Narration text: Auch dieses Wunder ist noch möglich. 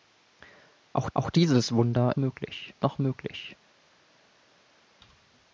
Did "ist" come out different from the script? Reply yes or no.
yes